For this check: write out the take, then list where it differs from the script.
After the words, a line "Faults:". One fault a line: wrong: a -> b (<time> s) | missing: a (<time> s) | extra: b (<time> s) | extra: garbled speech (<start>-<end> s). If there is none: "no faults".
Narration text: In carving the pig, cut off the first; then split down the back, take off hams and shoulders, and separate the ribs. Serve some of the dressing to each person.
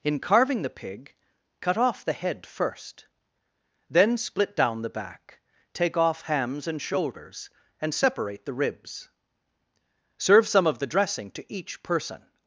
In carving the pig, cut off the head first; then split down the back, take off hams and shoulders, and separate the ribs. Serve some of the dressing to each person.
Faults:
extra: head (2.1 s)